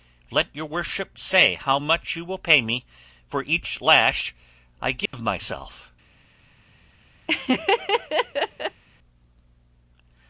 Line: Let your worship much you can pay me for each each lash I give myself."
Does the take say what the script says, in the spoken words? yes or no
no